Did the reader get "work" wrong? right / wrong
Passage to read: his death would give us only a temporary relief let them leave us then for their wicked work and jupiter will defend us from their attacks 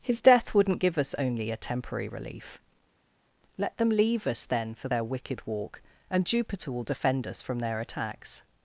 wrong